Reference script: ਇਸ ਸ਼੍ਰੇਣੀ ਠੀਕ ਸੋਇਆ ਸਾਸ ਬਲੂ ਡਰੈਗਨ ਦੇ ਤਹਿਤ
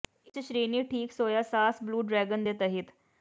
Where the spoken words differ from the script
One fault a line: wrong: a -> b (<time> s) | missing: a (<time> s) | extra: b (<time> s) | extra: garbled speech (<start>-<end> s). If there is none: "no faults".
no faults